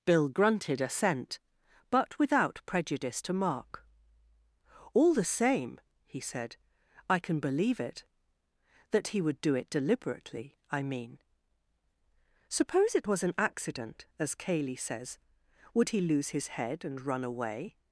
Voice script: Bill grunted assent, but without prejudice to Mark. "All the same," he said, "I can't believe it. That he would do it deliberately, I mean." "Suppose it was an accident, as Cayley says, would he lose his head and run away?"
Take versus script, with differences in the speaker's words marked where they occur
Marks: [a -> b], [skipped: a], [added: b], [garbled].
Bill grunted assent, but without prejudice to Mark. "All the same," he said, "I [can't -> can] believe it. That he would do it deliberately, I mean." "Suppose it was an accident, as Cayley says, would he lose his head and run away?"